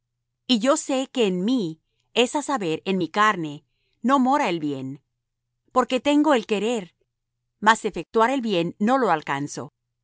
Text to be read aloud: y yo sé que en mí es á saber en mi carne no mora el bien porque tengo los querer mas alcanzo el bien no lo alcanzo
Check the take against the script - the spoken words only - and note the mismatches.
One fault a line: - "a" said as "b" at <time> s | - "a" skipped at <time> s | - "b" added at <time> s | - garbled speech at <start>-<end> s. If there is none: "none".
- "los" said as "el" at 6.3 s
- "alcanzo" said as "efectuar" at 7.8 s